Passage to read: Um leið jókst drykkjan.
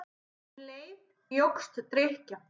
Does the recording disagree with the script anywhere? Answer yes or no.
no